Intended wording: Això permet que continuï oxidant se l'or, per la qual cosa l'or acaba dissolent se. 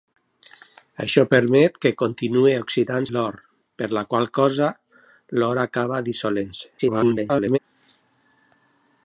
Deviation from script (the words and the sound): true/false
true